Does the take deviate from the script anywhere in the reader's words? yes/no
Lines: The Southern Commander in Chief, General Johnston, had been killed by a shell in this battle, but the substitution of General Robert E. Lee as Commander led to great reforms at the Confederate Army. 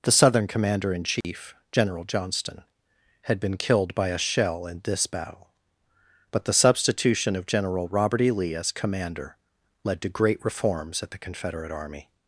no